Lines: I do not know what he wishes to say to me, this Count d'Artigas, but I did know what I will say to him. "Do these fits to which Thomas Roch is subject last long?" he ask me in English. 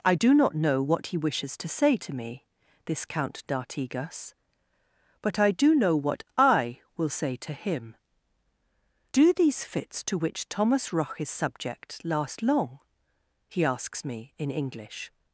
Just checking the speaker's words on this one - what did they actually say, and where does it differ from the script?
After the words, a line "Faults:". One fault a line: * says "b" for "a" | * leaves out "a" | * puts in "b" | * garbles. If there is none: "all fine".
I do not know what he wishes to say to me, this Count d'Artigas, but I do know what I will say to him. "Do these fits to which Thomas Roch is subject last long?" he asks me in English.
Faults:
* says "do" for "did"
* says "asks" for "ask"